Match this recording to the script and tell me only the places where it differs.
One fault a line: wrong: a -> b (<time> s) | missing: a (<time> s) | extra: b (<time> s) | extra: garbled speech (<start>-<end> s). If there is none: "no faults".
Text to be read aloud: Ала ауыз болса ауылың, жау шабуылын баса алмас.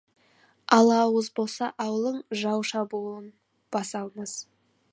no faults